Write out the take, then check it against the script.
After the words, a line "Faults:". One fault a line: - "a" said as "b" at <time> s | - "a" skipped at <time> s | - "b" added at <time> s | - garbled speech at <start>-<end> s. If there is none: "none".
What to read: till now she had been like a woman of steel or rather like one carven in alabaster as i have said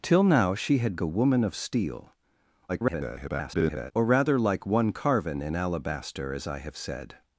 till now she had a woman of steel [garbled] or rather like one carven in alabaster as i have said
Faults:
- "been like" skipped at 1.0 s
- garbled speech at 2.7-3.9 s